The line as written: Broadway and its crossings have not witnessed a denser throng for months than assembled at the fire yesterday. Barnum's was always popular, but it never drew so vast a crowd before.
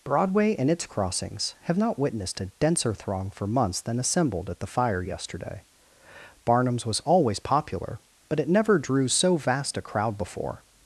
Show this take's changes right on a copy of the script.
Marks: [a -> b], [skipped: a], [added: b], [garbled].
Broadway and its crossings have not witnessed a denser throng for months than assembled at the fire yesterday. Barnum's was always popular, but it never drew so vast a crowd before.